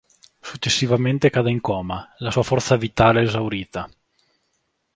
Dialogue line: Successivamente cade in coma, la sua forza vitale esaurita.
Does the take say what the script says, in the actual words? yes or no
yes